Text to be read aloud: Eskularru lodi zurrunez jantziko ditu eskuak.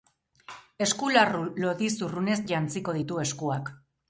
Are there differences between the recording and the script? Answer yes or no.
no